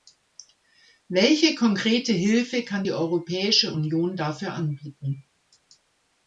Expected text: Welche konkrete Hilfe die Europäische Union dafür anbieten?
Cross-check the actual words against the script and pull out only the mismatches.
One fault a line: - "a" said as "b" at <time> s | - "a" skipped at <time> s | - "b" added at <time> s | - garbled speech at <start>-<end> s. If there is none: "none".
- "kann" added at 2.6 s